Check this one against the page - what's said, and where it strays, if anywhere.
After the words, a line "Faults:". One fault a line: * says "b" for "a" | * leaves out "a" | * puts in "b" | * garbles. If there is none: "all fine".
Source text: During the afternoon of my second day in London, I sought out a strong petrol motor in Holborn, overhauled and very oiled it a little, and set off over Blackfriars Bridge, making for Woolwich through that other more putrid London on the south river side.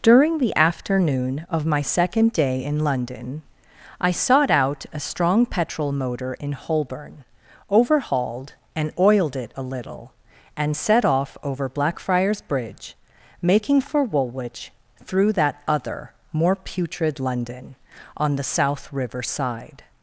During the afternoon of my second day in London, I sought out a strong petrol motor in Holborn, overhauled and oiled it a little, and set off over Blackfriars Bridge, making for Woolwich through that other more putrid London on the south river side.
Faults:
* leaves out "very"